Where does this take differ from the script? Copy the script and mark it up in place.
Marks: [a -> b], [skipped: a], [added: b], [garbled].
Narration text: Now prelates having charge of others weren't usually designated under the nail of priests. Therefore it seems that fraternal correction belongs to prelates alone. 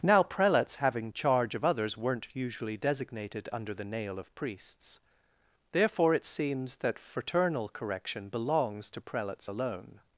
Now prelates having charge of others weren't usually designated under the nail of priests. Therefore it seems that fraternal correction belongs to prelates alone.